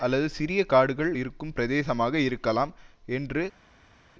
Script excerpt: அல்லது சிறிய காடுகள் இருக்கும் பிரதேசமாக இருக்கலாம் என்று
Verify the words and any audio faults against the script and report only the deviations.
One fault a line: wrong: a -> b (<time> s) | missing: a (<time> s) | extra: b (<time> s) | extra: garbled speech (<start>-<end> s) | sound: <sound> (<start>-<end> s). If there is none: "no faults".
no faults